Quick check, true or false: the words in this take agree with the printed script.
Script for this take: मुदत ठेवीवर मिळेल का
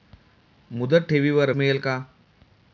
true